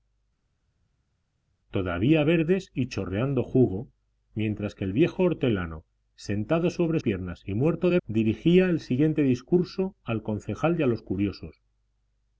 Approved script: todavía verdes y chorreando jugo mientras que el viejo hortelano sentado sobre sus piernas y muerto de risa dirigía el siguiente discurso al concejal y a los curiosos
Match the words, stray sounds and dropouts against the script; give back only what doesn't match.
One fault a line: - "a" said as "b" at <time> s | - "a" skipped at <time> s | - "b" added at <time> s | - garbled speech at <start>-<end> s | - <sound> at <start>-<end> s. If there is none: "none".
- "sus" skipped at 7.0 s
- "risa" skipped at 8.0 s